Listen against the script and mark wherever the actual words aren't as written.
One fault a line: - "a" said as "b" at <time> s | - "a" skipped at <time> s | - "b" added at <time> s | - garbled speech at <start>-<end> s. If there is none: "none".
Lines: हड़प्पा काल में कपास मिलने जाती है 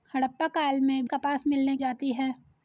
none